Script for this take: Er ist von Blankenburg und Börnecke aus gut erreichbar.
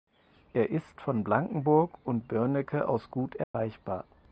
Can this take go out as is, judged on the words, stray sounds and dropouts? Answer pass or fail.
fail